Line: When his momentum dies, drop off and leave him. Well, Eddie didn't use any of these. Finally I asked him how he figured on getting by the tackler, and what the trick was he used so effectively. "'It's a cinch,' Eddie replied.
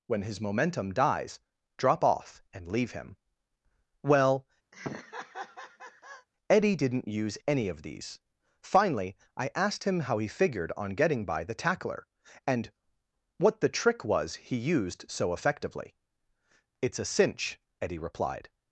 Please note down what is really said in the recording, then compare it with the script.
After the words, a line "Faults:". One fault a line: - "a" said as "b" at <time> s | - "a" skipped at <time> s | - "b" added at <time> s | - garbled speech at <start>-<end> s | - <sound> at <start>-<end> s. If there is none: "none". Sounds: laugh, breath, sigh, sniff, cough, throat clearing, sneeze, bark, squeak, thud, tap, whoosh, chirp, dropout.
When his momentum dies, drop off and leave him. Well, Eddie didn't use any of these. Finally I asked him how he figured on getting by the tackler, and what the trick was he used so effectively. "'It's a cinch,' Eddie replied.
Faults:
- laugh at 4.7-6.3 s